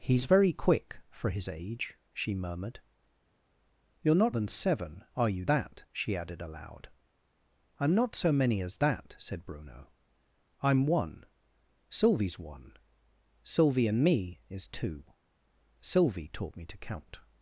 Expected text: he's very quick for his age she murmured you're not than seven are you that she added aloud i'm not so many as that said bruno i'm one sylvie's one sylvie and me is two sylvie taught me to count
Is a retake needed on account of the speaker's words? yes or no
no